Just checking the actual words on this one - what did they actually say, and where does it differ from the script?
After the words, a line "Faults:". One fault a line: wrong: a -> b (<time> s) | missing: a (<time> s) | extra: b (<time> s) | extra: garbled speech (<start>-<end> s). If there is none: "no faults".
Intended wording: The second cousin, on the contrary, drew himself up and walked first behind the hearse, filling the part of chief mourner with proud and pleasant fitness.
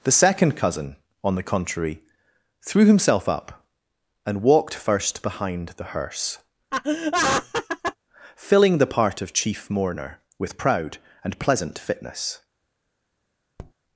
The second cousin, on the contrary, threw himself up and walked first behind the hearse, filling the part of chief mourner with proud and pleasant fitness.
Faults:
wrong: drew -> threw (2.6 s)